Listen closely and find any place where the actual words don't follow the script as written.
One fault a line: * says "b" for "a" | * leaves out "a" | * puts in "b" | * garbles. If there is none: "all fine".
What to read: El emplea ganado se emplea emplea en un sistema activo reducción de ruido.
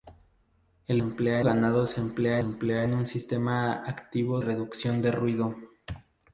all fine